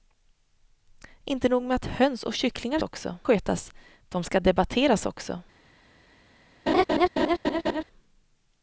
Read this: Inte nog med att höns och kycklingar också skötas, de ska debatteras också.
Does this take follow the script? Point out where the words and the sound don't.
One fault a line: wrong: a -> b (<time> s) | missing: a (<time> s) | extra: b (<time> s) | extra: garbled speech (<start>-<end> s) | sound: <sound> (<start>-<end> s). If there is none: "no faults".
sound: laugh (6.7-7.8 s)